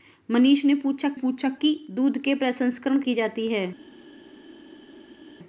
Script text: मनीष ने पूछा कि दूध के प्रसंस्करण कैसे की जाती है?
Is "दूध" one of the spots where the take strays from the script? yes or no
no